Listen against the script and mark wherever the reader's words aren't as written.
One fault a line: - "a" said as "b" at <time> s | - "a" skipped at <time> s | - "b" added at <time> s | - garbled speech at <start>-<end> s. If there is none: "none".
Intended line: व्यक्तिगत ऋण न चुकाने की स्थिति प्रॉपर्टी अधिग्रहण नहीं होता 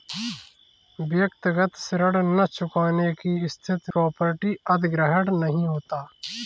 none